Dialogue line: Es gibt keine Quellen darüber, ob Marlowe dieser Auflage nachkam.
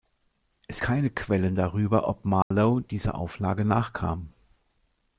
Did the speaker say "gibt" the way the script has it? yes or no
no